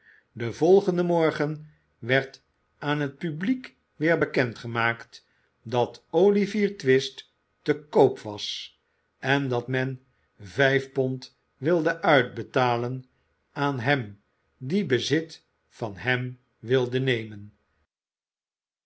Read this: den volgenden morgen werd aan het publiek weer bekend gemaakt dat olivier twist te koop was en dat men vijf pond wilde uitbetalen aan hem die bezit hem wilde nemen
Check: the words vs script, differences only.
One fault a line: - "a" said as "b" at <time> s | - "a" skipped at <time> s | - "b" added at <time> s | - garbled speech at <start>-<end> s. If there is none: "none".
- "van" added at 15.7 s